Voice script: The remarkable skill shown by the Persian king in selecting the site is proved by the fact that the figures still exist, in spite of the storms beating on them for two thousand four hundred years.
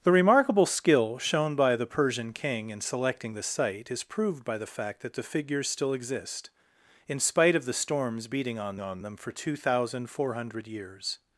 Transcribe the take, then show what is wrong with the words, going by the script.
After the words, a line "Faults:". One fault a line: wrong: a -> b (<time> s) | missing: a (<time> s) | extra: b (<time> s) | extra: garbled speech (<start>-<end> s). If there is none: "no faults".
The remarkable skill shown by the Persian king in selecting the site is proved by the fact that the figures still exist, in spite of the storms beating on on them for two thousand four hundred years.
Faults:
extra: on (8.8 s)